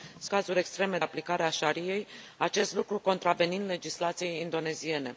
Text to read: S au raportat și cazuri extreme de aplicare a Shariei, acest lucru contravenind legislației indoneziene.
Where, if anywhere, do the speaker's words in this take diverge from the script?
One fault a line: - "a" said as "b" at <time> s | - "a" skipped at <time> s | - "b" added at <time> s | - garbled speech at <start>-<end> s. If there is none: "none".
- "au raportat și" skipped at 0.3 s
- "de" skipped at 1.0 s